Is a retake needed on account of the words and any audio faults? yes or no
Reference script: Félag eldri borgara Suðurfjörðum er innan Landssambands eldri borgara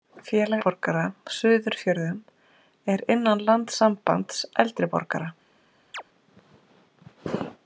yes